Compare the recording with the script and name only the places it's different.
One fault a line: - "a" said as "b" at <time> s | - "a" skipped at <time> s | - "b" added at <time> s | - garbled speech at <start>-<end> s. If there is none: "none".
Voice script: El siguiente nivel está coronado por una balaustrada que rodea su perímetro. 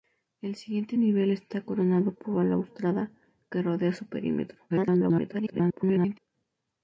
- "una" skipped at 2.3 s
- garbled speech at 4.7-6.2 s